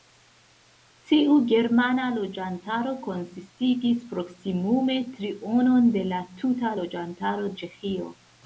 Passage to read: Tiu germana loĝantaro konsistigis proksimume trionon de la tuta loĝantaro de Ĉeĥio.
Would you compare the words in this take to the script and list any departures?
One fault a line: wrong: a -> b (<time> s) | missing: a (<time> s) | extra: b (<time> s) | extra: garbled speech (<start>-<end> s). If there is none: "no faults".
missing: de (7.6 s)